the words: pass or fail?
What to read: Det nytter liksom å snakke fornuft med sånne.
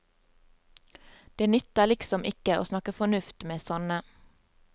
fail